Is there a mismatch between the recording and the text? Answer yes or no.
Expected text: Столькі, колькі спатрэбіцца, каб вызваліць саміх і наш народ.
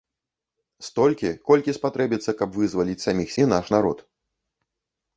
no